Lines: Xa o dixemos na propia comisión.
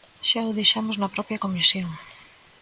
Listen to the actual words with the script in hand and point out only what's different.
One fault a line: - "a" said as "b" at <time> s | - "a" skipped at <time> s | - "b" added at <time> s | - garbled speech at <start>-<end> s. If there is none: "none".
none